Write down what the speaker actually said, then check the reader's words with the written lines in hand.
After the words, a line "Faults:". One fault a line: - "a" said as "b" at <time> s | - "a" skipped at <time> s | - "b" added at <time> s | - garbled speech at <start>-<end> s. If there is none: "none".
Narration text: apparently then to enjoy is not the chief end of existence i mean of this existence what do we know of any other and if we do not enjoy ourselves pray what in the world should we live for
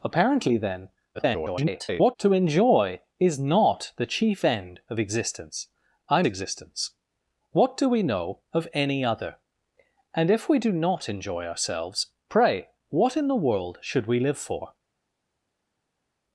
apparently then [garbled] to enjoy is not the chief end of existence i existence what do we know of any other and if we do not enjoy ourselves pray what in the world should we live for
Faults:
- garbled speech at 1.1-2.2 s
- "mean of this" skipped at 6.2 s